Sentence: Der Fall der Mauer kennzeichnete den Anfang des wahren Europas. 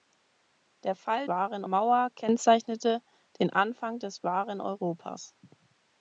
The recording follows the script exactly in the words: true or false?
false